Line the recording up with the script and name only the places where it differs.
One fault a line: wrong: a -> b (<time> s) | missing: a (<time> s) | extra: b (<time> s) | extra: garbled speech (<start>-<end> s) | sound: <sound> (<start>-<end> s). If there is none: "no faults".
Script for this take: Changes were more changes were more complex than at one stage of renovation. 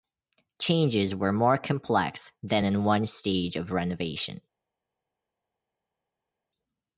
missing: changes were more (1.6 s)
wrong: at -> in (2.6 s)